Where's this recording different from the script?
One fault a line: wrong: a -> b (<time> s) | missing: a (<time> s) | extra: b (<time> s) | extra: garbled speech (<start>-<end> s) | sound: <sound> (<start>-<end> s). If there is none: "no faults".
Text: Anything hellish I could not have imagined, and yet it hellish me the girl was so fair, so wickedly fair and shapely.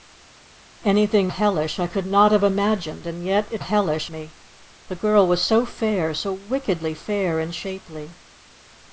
no faults